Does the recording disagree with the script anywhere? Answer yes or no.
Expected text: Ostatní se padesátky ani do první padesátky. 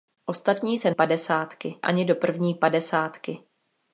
no